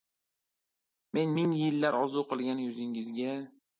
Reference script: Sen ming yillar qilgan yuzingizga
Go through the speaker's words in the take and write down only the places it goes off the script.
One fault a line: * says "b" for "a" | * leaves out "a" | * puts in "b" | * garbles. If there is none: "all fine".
* says "Men" for "Sen"
* puts in "orzu"